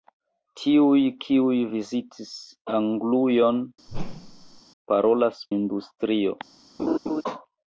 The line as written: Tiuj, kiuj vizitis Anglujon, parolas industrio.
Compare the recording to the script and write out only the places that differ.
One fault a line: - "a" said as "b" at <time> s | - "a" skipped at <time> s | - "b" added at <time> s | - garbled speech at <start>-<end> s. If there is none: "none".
none